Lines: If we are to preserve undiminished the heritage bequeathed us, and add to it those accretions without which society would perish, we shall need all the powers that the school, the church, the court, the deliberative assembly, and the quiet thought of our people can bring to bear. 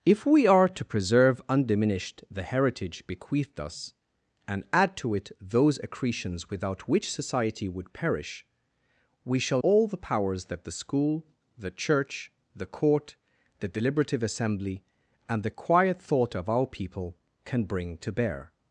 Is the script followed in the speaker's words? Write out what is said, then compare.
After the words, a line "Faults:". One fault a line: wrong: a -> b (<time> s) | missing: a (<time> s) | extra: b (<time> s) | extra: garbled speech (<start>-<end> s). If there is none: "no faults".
If we are to preserve undiminished the heritage bequeathed us, and add to it those accretions without which society would perish, we shall all the powers that the school, the church, the court, the deliberative assembly, and the quiet thought of our people can bring to bear.
Faults:
missing: need (9.6 s)